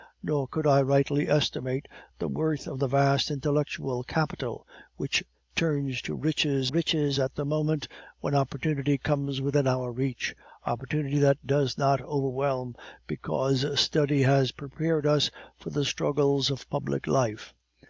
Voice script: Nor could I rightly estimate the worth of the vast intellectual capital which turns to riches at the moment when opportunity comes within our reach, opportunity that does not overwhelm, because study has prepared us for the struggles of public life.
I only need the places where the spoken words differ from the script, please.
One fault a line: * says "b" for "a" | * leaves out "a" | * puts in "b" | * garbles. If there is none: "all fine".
* puts in "riches"